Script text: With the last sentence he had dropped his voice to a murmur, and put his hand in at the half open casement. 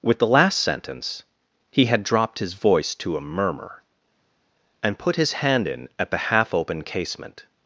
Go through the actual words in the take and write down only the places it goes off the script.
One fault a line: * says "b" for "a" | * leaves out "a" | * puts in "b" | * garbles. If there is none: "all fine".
all fine